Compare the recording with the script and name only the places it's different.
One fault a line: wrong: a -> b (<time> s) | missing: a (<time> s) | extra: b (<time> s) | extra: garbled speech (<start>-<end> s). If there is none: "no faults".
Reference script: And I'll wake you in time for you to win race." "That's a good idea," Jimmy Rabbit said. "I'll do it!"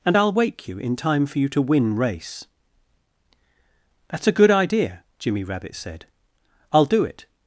no faults